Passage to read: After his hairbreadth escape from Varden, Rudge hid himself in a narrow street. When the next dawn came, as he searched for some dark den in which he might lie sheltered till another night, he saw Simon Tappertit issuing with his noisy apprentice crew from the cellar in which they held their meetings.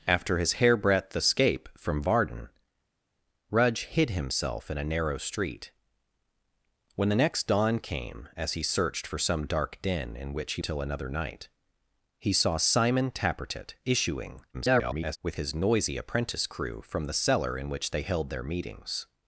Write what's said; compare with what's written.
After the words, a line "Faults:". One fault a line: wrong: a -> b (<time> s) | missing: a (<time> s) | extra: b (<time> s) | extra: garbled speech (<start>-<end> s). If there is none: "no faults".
After his hairbreadth escape from Varden, Rudge hid himself in a narrow street. When the next dawn came, as he searched for some dark den in which he till another night, he saw Simon Tappertit issuing [garbled] with his noisy apprentice crew from the cellar in which they held their meetings.
Faults:
missing: might lie sheltered (10.6 s)
extra: garbled speech (14.5-15.2 s)